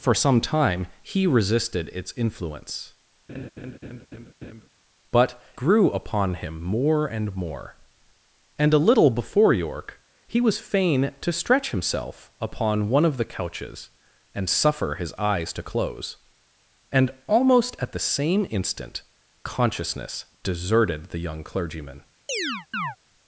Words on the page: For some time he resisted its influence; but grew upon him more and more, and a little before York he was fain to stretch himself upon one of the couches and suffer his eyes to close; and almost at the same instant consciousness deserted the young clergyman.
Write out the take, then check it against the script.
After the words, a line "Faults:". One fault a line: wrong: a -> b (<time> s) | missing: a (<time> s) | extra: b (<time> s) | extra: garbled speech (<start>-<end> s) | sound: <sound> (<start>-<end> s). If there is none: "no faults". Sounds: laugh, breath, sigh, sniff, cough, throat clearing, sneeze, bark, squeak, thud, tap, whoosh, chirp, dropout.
For some time he resisted its influence; but grew upon him more and more, and a little before York he was fain to stretch himself upon one of the couches and suffer his eyes to close; and almost at the same instant consciousness deserted the young clergyman.
Faults:
sound: laugh (3.3-4.7 s)
sound: chirp (22.3-23.0 s)